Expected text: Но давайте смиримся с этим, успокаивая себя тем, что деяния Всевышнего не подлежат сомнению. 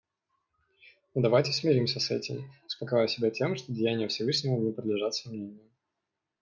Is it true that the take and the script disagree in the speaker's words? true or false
false